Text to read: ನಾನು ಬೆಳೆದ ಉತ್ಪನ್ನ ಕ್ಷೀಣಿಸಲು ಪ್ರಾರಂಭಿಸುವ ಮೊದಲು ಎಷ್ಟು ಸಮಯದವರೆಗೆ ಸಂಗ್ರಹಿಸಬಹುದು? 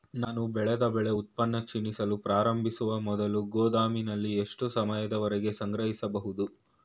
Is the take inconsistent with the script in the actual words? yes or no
yes